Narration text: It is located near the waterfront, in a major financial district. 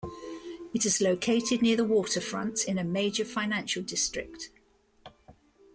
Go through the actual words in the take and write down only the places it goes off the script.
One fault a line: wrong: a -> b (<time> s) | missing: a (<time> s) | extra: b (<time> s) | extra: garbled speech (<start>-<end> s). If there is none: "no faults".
no faults